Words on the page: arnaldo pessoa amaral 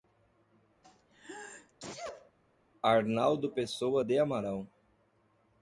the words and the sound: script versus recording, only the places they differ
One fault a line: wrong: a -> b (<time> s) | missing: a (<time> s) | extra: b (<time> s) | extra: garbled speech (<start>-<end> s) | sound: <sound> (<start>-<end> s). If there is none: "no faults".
sound: sneeze (0.8-2.3 s)
extra: de (4.0 s)